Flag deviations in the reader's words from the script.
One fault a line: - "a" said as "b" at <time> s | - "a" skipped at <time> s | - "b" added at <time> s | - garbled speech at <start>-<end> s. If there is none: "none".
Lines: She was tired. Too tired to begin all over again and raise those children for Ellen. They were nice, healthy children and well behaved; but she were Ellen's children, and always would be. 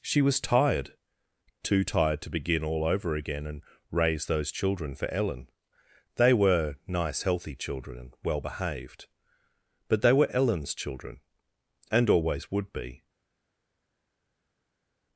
- "she" said as "they" at 10.0 s